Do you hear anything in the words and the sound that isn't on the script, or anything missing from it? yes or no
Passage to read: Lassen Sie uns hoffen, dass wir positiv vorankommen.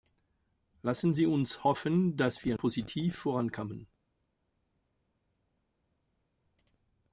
no